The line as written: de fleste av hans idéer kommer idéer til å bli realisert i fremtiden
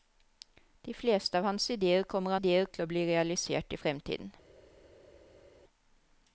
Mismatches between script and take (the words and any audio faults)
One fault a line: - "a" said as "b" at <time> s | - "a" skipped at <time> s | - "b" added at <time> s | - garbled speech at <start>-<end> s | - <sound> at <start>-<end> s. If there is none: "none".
none